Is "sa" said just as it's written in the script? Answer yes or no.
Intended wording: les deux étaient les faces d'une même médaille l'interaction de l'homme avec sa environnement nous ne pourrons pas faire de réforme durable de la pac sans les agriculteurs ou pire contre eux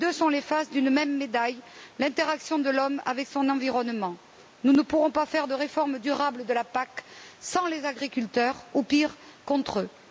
no